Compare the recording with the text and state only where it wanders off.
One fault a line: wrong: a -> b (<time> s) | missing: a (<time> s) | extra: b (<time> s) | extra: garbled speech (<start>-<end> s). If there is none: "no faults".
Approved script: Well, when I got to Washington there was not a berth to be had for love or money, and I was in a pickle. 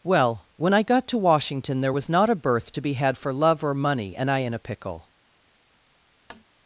missing: was (4.4 s)